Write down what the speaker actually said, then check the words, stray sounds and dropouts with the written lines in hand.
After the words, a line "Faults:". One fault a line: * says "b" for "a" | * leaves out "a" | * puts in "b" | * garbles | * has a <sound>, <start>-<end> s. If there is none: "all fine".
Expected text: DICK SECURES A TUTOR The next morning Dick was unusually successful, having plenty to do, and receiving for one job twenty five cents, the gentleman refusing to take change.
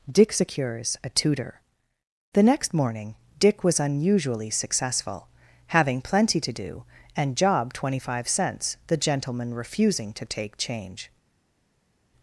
DICK SECURES A TUTOR The next morning Dick was unusually successful, having plenty to do, and job twenty five cents, the gentleman refusing to take change.
Faults:
* leaves out "receiving for one"